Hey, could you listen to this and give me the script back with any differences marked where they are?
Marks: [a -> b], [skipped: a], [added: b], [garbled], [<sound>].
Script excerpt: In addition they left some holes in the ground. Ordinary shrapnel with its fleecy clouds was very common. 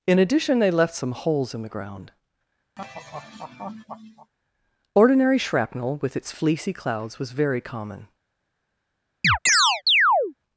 In addition they left some holes in the ground. [laugh] Ordinary shrapnel with its fleecy clouds was very common. [chirp]